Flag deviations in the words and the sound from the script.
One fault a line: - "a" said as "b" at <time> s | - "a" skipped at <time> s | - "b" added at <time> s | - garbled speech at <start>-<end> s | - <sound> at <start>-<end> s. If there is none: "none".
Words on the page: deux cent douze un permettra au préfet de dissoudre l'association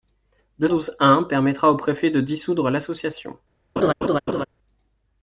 - "cent" skipped at 0.7 s
- laugh at 3.8-4.5 s